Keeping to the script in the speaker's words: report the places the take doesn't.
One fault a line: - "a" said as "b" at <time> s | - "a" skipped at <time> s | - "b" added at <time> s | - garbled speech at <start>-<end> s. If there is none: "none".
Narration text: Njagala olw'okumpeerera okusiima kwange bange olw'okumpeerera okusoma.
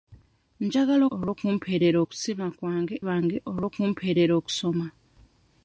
none